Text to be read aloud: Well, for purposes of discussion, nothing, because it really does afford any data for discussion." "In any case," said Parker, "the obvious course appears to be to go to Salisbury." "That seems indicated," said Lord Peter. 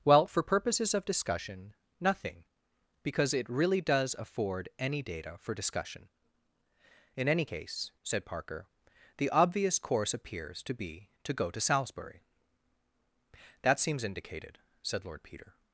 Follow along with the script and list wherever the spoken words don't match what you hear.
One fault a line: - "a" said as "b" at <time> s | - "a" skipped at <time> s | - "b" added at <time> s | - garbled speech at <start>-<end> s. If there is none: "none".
none